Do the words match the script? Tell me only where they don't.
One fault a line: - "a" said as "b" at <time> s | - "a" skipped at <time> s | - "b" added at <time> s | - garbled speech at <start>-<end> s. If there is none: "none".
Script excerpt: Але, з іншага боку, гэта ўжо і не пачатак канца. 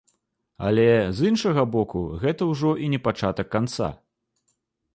none